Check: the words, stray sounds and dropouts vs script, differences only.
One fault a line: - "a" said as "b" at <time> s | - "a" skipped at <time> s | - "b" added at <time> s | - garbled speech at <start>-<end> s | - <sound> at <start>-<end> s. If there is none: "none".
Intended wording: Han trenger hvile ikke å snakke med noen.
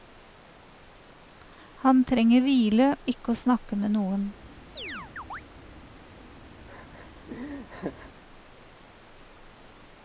- chirp at 4.8-5.4 s
- laugh at 6.7-8.1 s